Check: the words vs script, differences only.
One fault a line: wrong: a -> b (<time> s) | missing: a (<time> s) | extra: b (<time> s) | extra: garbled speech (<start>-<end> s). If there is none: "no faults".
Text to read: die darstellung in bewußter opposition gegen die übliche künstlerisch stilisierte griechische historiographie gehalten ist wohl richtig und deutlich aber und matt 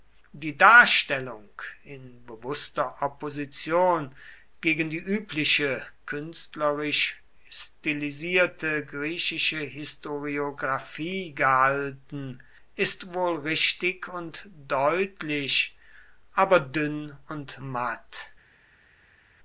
extra: dünn (16.6 s)